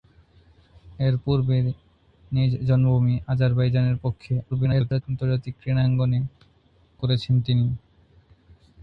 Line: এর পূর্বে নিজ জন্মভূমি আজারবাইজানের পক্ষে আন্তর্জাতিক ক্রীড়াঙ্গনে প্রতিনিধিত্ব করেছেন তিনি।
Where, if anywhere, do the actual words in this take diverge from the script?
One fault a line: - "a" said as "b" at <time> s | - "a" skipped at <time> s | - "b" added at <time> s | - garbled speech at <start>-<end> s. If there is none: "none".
- garbled speech at 4.5-5.0 s
- "প্রতিনিধিত্ব" skipped at 6.2 s